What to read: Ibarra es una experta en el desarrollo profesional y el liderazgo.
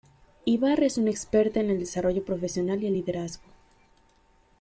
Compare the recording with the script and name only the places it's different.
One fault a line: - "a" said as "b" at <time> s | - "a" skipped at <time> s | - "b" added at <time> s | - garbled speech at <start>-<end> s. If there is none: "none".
none